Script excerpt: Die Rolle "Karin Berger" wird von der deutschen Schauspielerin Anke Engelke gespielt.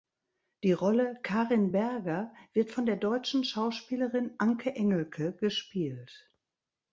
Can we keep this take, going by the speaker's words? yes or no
yes